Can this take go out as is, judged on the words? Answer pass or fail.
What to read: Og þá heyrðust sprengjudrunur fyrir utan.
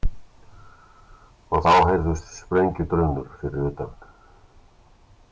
pass